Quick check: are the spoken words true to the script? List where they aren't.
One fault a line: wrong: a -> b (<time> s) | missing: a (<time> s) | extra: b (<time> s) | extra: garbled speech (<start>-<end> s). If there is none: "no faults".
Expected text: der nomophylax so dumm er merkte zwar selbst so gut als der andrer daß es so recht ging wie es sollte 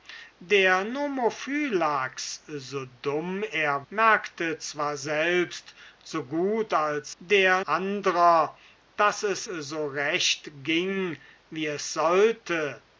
no faults